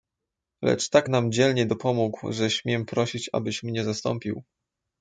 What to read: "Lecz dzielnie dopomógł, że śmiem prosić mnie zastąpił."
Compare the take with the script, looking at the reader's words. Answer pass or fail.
fail